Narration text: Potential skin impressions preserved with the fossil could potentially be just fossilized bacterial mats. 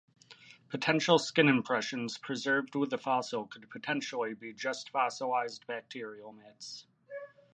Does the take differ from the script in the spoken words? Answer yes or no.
no